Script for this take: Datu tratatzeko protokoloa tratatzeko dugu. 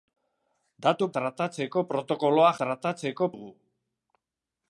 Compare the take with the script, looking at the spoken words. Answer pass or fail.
pass